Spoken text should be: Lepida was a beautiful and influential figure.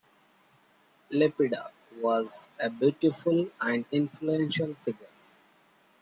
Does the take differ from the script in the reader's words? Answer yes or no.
no